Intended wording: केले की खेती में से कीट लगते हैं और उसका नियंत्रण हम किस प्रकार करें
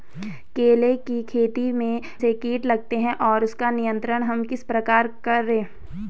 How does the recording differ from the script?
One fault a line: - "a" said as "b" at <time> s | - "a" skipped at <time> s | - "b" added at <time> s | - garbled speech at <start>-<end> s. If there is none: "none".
none